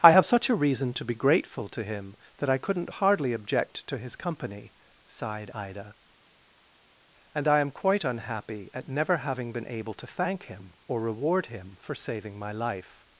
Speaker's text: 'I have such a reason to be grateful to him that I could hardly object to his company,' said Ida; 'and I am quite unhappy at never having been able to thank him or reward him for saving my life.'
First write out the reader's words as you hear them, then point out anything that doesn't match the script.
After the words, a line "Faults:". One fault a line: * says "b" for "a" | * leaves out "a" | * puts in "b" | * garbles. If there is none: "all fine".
'I have such a reason to be grateful to him that I couldn't hardly object to his company,' sighed Ida; 'and I am quite unhappy at never having been able to thank him or reward him for saving my life.'
Faults:
* says "couldn't" for "could"
* says "sighed" for "said"